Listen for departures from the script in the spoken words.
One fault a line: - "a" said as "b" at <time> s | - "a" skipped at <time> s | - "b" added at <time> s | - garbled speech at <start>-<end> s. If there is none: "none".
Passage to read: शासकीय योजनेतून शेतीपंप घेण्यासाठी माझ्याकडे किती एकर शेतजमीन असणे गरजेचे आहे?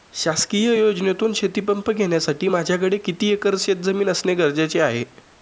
none